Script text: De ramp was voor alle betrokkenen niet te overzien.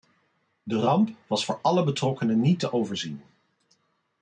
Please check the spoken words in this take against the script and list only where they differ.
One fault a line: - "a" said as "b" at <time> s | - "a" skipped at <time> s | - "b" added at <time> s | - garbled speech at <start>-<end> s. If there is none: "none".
none